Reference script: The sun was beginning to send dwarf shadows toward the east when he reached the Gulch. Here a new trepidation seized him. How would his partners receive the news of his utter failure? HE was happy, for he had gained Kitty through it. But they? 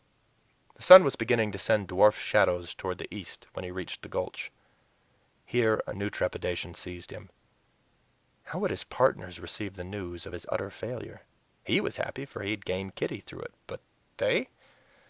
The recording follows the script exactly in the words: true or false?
true